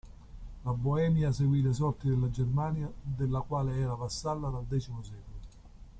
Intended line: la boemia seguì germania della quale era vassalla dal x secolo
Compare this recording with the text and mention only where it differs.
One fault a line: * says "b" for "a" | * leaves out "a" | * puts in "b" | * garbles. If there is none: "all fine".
* puts in "le sorti della"